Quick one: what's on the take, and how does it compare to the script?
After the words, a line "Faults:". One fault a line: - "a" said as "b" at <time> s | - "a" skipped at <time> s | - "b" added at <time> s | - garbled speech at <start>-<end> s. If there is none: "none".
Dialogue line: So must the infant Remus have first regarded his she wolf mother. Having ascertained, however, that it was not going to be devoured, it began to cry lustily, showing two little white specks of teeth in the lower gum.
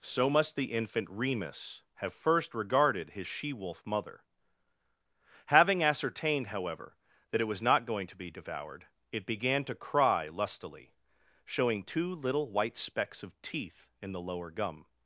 So must the infant Remus have first regarded his she wolf mother. Having ascertained, however, that it was not going to be devoured, it began to cry lustily, showing two little white specks of teeth in the lower gum.
Faults:
none